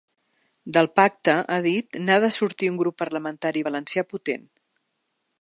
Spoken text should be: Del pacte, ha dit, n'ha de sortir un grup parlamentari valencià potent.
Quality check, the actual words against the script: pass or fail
pass